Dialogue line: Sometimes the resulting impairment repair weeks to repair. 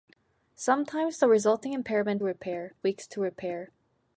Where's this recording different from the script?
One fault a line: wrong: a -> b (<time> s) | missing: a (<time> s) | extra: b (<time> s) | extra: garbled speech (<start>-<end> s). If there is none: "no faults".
no faults